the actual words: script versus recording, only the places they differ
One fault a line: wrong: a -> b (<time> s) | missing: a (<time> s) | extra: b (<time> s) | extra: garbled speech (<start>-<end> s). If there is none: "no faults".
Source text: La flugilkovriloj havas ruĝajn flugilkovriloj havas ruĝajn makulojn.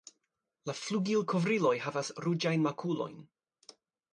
missing: flugilkovriloj havas ruĝajn (2.7 s)